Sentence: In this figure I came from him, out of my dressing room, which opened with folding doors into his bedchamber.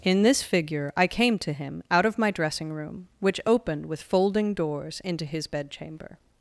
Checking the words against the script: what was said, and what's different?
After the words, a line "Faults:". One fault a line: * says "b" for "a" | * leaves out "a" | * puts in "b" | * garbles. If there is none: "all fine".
In this figure I came to him, out of my dressing room, which opened with folding doors into his bedchamber.
Faults:
* says "to" for "from"